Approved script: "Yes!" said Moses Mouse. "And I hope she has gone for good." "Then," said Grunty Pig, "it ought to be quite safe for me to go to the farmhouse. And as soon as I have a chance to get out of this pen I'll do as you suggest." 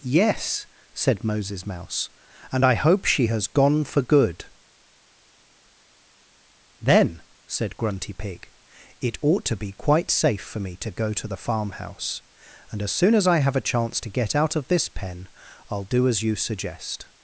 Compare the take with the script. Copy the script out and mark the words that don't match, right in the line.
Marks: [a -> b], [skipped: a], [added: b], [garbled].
"Yes!" said Moses Mouse. "And I hope she has gone for good." "Then," said Grunty Pig, "it ought to be quite safe for me to go to the farmhouse. And as soon as I have a chance to get out of this pen I'll do as you suggest."